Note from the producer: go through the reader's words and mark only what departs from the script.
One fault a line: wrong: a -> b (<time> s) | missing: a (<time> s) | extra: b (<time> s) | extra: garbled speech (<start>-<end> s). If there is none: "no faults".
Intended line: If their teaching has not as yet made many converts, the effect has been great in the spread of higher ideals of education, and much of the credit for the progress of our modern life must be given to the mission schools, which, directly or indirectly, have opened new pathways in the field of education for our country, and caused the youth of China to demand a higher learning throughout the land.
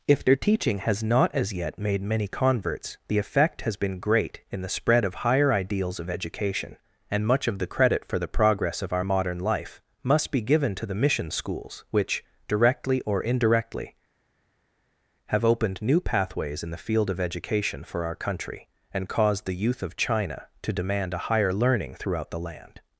no faults